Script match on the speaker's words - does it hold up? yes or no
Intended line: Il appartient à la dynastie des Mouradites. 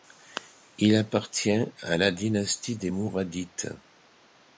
yes